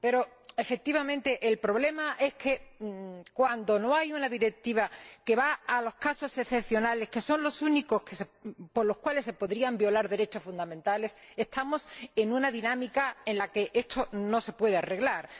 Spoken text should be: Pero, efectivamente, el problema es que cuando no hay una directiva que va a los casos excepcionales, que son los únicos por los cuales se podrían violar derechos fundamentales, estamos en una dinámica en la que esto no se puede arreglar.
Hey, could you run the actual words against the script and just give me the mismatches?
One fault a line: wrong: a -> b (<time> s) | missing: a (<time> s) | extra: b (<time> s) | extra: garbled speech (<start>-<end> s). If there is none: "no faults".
no faults